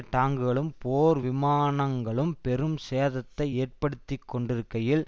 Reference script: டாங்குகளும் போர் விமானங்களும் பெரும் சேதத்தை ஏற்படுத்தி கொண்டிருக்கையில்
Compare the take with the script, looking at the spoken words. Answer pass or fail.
pass